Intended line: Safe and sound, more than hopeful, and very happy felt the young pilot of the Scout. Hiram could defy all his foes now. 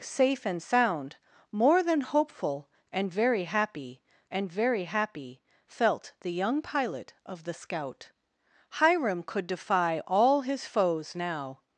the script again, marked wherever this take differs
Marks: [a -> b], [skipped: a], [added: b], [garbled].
Safe and sound, more than hopeful, and very happy [added: and very happy] felt the young pilot of the Scout. Hiram could defy all his foes now.